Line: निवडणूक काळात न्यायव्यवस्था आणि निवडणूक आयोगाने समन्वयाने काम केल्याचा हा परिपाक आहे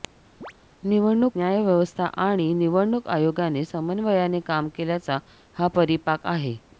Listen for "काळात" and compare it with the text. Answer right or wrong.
wrong